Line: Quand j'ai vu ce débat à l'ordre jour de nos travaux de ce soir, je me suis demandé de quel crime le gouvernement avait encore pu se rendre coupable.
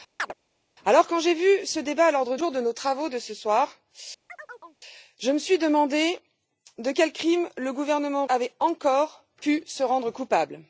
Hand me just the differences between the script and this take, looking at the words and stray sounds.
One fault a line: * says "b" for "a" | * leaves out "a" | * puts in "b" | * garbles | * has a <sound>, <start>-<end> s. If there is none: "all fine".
* has a chirp, 0.2-0.3 s
* has a chirp, 4.3-4.8 s